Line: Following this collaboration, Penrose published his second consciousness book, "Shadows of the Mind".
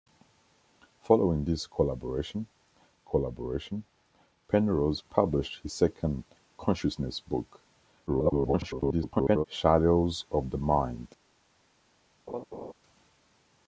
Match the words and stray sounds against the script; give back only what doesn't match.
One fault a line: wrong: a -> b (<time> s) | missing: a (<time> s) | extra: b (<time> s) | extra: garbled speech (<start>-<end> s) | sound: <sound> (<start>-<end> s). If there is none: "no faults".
extra: collaboration (3.0 s)
extra: garbled speech (8.1-9.5 s)
sound: laugh (12.3-12.7 s)